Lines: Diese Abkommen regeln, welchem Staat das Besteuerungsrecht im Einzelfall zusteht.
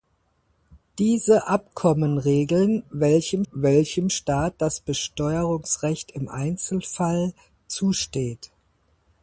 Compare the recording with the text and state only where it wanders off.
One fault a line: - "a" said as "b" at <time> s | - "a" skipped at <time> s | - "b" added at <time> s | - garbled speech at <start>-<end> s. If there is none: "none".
- "welchem" added at 3.5 s